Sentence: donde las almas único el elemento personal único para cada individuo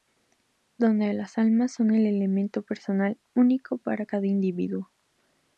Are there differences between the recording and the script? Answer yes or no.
yes